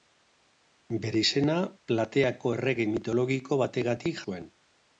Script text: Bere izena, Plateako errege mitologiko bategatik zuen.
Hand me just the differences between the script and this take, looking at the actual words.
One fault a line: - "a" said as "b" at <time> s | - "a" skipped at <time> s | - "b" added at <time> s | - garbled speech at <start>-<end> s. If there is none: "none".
none